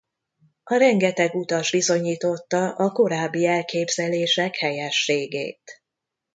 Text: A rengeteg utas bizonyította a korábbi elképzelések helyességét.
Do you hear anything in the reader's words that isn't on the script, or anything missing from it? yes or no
no